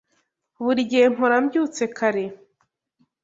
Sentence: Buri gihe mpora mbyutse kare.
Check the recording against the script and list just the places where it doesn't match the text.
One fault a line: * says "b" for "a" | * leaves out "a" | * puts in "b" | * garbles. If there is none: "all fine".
all fine